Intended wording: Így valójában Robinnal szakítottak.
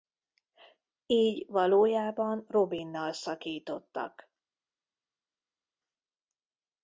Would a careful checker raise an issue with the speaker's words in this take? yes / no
no